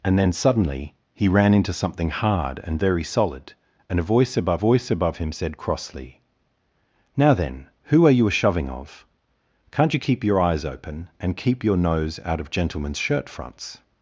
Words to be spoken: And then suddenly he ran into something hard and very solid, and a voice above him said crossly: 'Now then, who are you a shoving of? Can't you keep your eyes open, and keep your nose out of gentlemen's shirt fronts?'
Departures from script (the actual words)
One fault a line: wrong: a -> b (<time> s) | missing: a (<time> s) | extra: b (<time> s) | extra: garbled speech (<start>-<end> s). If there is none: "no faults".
extra: voice above (4.6 s)